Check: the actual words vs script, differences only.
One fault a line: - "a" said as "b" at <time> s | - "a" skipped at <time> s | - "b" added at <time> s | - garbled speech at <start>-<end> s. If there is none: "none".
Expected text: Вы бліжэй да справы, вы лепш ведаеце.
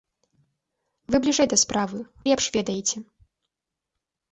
- "вы" skipped at 2.0 s